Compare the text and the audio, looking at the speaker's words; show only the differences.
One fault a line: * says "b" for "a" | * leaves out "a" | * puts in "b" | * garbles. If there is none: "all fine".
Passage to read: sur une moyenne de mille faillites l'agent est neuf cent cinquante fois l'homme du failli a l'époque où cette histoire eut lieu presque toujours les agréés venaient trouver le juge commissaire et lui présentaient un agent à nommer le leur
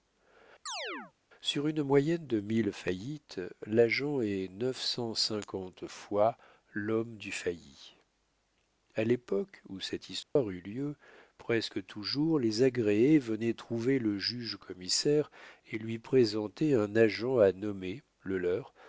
all fine